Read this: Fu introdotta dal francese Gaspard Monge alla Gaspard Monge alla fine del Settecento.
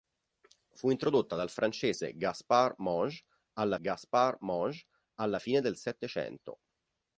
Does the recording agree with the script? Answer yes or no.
yes